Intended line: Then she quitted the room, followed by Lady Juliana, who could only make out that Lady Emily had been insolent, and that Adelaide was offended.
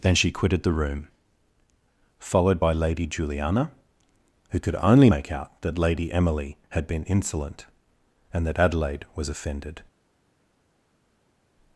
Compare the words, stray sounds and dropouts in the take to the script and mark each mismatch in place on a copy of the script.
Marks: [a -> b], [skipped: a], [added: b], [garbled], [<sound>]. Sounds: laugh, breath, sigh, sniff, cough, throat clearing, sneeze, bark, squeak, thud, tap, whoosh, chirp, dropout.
Then she quitted the room, followed by Lady Juliana, who could only make out that Lady Emily had been insolent, and that Adelaide was offended.